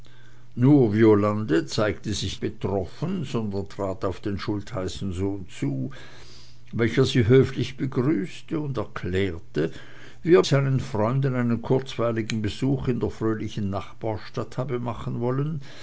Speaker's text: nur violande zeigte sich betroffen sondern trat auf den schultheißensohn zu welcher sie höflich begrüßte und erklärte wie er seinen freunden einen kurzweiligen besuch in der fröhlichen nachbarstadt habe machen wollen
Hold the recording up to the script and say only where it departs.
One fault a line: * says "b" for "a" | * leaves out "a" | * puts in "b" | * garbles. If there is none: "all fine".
all fine